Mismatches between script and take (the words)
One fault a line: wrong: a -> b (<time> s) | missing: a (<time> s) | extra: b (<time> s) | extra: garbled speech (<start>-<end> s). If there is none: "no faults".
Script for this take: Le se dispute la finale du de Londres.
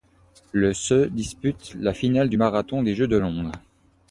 extra: marathon des Jeux (2.4 s)